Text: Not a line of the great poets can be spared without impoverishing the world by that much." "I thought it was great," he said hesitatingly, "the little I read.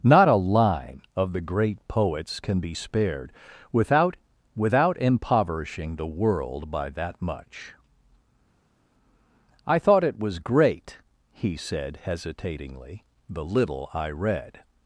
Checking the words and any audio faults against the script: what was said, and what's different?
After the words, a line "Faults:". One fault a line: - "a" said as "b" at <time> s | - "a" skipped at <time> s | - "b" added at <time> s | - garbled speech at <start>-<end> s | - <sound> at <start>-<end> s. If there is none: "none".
Not a line of the great poets can be spared without without impoverishing the world by that much." "I thought it was great," he said hesitatingly, "the little I read.
Faults:
- "without" added at 4.6 s